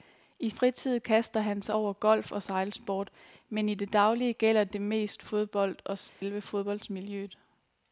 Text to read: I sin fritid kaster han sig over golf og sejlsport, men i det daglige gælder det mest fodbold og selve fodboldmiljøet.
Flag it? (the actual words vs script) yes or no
yes